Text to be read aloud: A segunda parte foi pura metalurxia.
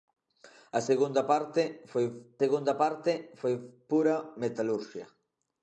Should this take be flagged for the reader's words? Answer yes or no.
yes